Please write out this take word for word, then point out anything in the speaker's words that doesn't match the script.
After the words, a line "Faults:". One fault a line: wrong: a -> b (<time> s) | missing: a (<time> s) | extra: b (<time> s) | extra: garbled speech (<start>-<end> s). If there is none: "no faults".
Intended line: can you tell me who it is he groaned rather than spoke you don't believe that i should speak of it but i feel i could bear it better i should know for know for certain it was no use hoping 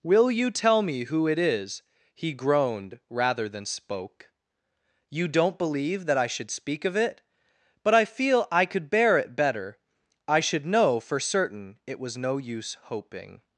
will you tell me who it is he groaned rather than spoke you don't believe that i should speak of it but i feel i could bear it better i should know for certain it was no use hoping
Faults:
wrong: can -> will (0.0 s)
missing: know for (11.2 s)